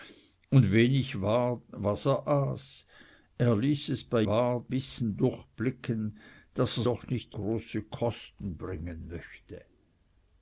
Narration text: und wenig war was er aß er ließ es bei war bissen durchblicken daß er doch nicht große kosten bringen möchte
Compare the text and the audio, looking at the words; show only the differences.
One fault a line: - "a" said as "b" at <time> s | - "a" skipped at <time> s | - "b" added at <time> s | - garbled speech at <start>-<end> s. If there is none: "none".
none